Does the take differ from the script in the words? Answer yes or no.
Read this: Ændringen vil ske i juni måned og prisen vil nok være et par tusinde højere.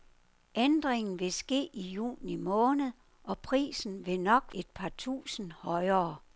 yes